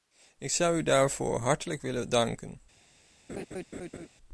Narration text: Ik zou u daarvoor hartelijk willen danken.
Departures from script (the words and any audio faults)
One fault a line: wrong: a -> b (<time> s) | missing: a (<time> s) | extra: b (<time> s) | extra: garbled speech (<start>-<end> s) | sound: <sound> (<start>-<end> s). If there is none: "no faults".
sound: laugh (3.3-4.1 s)